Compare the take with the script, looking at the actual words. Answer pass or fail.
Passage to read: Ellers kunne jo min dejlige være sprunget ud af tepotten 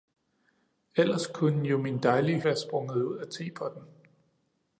pass